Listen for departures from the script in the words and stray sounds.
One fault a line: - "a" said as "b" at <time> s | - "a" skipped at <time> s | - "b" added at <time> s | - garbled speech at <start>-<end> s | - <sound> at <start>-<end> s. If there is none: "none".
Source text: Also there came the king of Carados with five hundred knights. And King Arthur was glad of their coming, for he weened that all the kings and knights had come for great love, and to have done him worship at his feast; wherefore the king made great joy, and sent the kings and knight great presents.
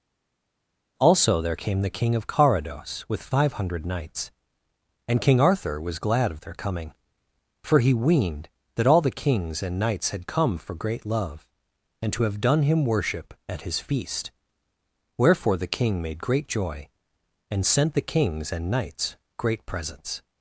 - "knight" said as "knights" at 18.7 s